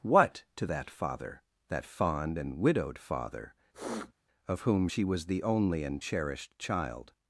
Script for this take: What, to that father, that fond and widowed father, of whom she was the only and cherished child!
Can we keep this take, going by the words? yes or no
yes